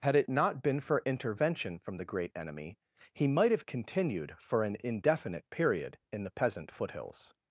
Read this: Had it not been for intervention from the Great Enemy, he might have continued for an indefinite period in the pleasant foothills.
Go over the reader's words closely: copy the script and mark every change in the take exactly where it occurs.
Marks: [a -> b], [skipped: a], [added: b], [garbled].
Had it not been for intervention from the Great Enemy, he might have continued for an indefinite period in the [pleasant -> peasant] foothills.